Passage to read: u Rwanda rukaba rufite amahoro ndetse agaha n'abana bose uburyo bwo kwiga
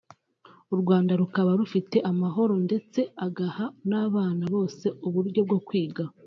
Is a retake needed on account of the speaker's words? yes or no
no